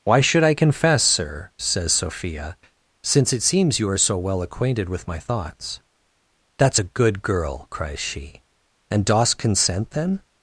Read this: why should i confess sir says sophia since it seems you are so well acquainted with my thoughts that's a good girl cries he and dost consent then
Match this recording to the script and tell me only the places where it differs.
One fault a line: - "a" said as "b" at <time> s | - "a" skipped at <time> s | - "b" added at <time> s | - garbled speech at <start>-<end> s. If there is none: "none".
- "he" said as "she" at 8.0 s